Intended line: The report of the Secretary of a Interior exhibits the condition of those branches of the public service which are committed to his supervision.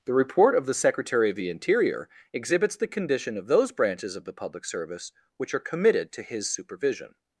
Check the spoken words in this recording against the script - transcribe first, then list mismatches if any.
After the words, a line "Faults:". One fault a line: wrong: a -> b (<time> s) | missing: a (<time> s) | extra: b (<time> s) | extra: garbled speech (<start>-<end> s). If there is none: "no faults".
The report of the Secretary of the Interior exhibits the condition of those branches of the public service which are committed to his supervision.
Faults:
wrong: a -> the (1.4 s)